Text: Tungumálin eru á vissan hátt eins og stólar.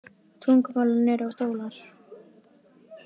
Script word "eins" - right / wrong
wrong